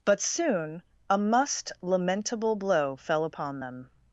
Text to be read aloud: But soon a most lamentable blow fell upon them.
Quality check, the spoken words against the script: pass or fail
fail